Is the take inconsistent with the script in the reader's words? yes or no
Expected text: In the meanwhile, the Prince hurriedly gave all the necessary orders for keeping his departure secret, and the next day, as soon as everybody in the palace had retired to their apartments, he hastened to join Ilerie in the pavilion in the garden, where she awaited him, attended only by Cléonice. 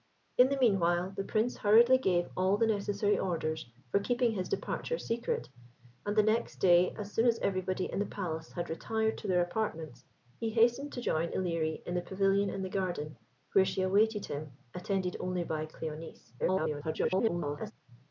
yes